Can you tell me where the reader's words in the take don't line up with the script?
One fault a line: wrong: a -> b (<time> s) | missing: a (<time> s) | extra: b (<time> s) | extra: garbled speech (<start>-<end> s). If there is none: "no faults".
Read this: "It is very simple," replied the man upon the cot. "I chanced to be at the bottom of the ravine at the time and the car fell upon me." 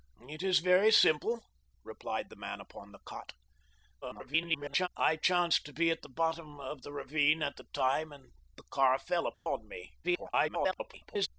extra: garbled speech (4.0-4.9 s)
extra: garbled speech (10.0-11.3 s)